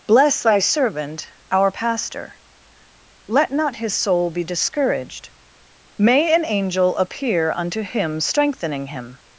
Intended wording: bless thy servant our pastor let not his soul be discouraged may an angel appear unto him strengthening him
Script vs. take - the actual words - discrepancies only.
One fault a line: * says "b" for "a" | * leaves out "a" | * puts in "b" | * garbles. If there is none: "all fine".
all fine